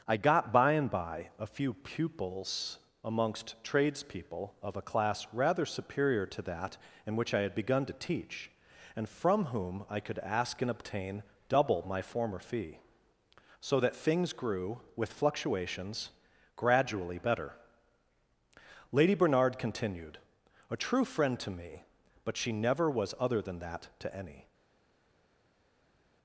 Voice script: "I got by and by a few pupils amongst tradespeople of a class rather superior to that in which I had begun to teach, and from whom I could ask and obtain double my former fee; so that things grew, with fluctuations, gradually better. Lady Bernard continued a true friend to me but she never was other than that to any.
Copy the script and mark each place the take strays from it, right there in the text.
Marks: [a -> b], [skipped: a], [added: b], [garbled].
"I got by and by a few pupils amongst tradespeople of a class rather superior to that in which I had begun to teach, and from whom I could ask and obtain double my former fee; so that things grew, with fluctuations, gradually better. Lady Bernard continued a true friend to me but she never was other than that to any.